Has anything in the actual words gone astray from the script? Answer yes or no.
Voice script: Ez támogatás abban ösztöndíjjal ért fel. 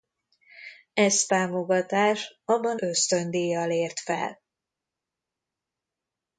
no